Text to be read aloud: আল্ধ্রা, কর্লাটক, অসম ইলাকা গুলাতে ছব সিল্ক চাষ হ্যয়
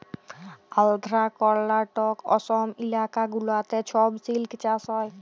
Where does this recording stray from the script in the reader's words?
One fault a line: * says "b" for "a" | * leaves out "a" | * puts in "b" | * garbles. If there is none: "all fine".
all fine